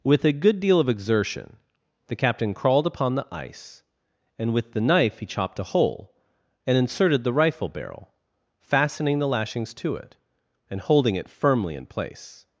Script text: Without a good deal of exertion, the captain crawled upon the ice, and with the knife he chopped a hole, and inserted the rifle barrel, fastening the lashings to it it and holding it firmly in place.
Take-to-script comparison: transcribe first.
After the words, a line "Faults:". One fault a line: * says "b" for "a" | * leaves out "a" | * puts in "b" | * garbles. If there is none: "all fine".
With a good deal of exertion, the captain crawled upon the ice, and with the knife he chopped a hole, and inserted the rifle barrel, fastening the lashings to it and holding it firmly in place.
Faults:
* says "With" for "Without"
* leaves out "it"